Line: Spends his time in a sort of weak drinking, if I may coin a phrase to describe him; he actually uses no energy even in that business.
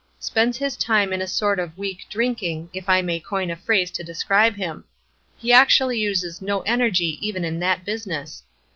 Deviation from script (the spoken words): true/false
false